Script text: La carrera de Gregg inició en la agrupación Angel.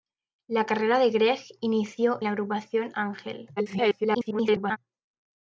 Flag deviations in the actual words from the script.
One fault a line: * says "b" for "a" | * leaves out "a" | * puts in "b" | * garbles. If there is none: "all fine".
* leaves out "en"
* garbles